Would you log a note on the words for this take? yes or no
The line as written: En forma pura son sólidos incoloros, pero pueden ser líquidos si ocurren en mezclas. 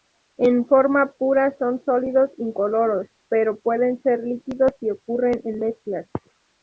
no